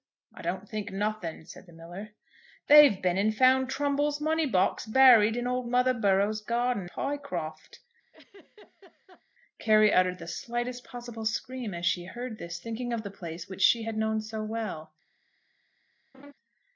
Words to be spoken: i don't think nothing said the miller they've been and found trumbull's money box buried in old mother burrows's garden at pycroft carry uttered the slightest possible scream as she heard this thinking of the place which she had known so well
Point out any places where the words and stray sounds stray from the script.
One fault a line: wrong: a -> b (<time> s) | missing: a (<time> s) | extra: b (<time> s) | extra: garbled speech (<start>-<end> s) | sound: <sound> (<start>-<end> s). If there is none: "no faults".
missing: at (6.9 s)
sound: laugh (8.1-9.2 s)
sound: laugh (16.1-16.3 s)